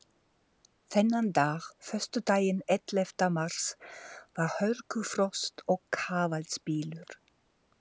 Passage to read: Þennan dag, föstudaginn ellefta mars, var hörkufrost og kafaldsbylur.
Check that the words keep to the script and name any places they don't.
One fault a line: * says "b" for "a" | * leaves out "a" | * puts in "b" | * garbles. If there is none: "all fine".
all fine